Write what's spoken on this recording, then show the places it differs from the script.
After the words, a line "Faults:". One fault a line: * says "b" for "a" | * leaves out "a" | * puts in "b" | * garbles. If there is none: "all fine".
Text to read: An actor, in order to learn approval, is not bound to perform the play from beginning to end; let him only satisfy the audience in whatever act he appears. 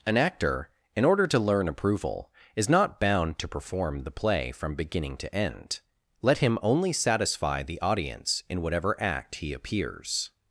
An actor, in order to learn approval, is not bound to perform the play from beginning to end; let him only satisfy the audience in whatever act he appears.
Faults:
all fine